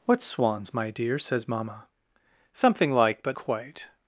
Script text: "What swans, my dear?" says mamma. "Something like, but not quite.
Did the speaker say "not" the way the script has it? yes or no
no